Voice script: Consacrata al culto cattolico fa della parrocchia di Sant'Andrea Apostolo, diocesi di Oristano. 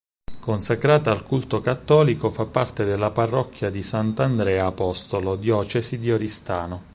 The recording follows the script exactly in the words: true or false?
false